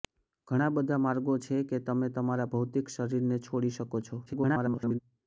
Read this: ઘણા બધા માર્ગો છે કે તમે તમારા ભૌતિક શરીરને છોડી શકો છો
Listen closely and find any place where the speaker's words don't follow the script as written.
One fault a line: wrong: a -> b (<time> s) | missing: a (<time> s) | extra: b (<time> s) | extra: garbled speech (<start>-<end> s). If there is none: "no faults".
extra: garbled speech (4.3-5.0 s)